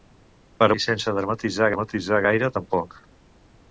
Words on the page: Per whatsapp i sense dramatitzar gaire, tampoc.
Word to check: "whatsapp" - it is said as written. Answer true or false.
false